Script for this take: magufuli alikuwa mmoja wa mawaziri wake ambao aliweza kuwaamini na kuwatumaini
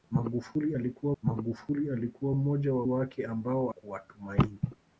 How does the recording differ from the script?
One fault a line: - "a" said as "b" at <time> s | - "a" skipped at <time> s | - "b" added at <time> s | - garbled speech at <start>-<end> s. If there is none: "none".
- "magufuli alikuwa" added at 1.2 s
- "mawaziri" skipped at 2.9 s
- "aliweza kuwaamini na" skipped at 3.7 s